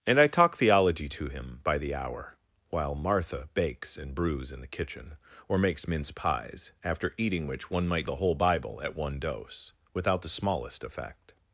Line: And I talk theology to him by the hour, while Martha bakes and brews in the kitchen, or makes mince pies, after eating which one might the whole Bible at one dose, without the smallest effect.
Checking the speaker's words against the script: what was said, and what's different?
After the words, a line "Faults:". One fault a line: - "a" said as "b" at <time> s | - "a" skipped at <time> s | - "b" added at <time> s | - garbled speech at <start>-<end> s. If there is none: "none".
And I talk theology to him by the hour, while Martha bakes and brews in the kitchen, or makes mince pies, after eating which one might the whole Bible at one dose, without the smallest effect.
Faults:
none